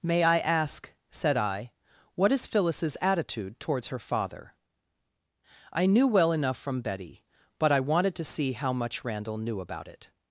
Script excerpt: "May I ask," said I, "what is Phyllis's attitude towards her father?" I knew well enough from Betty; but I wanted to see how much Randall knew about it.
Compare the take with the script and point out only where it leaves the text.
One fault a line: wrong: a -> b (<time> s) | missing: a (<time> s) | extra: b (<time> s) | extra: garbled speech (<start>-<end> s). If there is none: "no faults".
no faults